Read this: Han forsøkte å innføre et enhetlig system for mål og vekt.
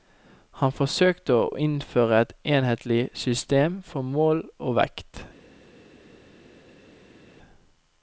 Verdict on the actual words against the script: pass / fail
pass